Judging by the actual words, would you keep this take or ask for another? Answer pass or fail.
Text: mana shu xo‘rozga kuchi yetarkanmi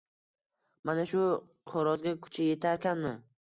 pass